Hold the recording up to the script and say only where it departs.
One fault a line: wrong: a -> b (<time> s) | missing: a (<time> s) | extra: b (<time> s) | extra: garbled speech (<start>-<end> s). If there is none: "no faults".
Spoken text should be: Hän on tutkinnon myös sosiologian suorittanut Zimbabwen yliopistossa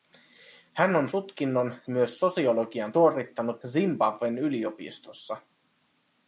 no faults